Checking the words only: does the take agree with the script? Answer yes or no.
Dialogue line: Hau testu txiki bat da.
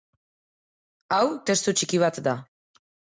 yes